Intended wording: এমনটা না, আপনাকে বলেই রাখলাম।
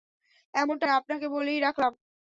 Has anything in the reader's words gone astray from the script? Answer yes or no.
no